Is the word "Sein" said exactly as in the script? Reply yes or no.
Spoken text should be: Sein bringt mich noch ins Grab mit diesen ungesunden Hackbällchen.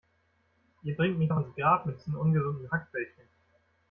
no